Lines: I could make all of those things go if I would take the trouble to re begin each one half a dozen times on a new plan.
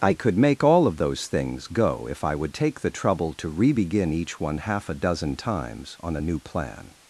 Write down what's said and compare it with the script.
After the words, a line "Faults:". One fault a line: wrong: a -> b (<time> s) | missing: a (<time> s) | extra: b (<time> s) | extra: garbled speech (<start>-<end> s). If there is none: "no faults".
I could make all of those things go if I would take the trouble to re begin each one half a dozen times on a new plan.
Faults:
no faults